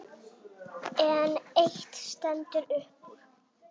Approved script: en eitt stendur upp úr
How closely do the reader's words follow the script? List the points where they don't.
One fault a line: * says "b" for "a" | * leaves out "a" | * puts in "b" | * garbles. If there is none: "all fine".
all fine